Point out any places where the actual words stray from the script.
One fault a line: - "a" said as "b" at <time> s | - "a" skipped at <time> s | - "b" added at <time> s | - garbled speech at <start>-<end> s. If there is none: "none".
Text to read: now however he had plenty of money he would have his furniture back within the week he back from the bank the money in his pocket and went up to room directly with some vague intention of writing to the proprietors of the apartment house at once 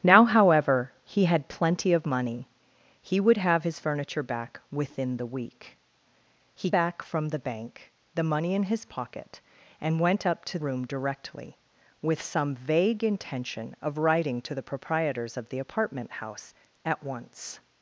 none